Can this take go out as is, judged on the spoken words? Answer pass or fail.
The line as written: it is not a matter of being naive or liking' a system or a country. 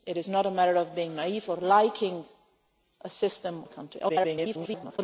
fail